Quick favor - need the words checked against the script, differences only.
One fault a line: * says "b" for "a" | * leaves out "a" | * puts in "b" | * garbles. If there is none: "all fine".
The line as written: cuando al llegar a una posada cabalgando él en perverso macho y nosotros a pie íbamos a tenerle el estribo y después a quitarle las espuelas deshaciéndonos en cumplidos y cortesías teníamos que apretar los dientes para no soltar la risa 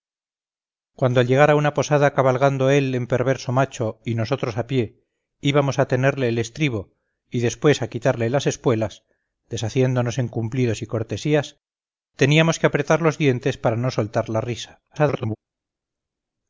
* garbles